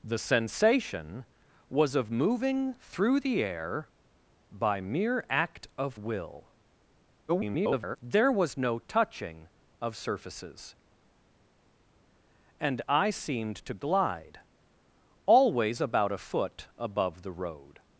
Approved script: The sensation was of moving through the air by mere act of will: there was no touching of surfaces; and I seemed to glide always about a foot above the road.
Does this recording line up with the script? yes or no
no